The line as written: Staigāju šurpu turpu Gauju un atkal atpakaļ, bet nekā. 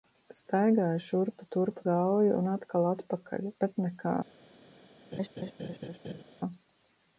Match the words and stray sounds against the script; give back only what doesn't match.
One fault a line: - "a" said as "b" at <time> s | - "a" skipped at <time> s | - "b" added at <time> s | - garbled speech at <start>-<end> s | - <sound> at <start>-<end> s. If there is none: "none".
- laugh at 5.1-6.2 s